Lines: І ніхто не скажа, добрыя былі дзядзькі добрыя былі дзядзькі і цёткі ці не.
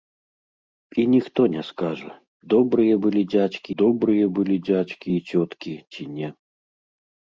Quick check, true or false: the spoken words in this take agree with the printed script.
true